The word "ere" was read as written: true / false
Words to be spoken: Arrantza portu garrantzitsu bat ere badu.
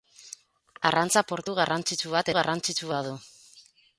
false